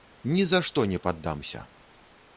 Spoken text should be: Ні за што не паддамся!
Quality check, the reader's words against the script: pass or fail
pass